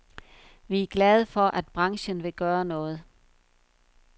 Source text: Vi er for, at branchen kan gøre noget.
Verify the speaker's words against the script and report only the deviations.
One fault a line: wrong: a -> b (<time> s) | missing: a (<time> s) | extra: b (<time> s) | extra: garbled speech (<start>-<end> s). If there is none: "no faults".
extra: glade (0.9 s)
wrong: kan -> vil (2.2 s)